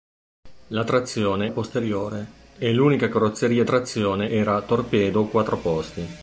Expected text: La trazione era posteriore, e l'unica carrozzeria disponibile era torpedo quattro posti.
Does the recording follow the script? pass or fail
fail